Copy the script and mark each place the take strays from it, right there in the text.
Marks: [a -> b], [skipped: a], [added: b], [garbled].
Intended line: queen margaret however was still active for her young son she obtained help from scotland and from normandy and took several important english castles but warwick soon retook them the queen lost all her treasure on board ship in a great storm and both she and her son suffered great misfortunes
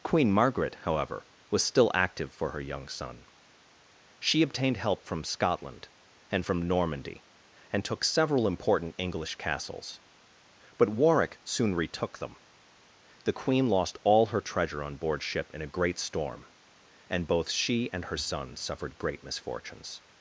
queen margaret however was still active for her young son she obtained help from scotland and from normandy and took several important english castles but warwick soon retook them the queen lost all her treasure on board ship in a great storm and both she and her son suffered great misfortunes